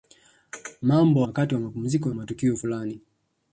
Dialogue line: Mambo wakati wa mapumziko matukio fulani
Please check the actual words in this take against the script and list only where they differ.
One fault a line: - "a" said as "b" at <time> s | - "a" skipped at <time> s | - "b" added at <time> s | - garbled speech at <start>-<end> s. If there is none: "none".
none